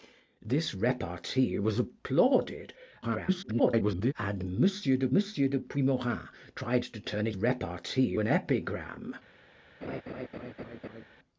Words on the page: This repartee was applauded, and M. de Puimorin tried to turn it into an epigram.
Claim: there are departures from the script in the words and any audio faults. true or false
true